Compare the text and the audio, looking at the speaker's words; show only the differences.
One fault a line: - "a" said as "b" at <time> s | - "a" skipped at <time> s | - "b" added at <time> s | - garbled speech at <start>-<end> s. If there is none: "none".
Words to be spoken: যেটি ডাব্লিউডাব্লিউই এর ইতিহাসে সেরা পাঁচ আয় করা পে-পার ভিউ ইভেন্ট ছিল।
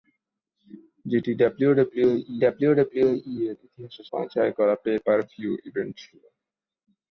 - "ডাব্লিউডাব্লিউই" added at 2.4 s
- "সেরা" skipped at 4.0 s